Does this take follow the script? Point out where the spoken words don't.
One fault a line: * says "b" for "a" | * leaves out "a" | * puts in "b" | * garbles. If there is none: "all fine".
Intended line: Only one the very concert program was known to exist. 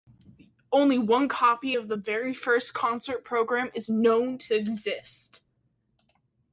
* puts in "copy of"
* puts in "first"
* says "is" for "was"